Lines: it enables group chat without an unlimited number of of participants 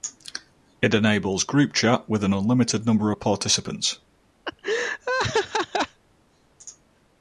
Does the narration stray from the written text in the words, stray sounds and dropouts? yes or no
yes